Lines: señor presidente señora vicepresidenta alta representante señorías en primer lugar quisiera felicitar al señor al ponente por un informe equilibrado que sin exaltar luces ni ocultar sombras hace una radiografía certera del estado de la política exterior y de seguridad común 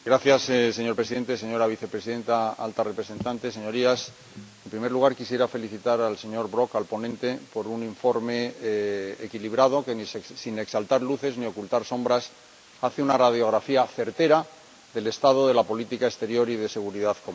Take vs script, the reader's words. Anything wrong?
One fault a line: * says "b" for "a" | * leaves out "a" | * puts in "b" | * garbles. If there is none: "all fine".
* puts in "brok"